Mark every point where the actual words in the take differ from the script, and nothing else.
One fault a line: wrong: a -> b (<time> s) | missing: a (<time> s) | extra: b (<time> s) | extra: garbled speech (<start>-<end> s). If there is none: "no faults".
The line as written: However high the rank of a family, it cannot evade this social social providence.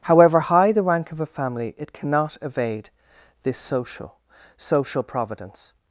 no faults